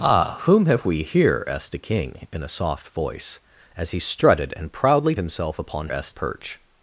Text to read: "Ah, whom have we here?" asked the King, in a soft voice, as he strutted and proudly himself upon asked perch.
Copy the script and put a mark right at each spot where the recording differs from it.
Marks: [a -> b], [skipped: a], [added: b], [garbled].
"Ah, whom have we here?" asked the King, in a soft voice, as he strutted and proudly himself upon asked perch.